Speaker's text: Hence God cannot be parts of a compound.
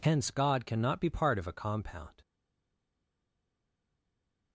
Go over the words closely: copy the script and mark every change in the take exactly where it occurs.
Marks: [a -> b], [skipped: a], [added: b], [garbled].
Hence God cannot be [parts -> part] of a compound.